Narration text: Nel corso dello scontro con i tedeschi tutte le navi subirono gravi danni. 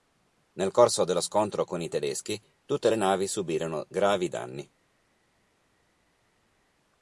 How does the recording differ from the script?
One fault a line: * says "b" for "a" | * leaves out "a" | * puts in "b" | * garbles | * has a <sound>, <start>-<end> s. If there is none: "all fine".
all fine